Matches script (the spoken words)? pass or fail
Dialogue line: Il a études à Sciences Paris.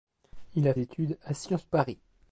pass